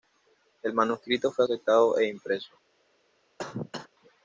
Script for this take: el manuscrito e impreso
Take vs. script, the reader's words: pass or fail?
fail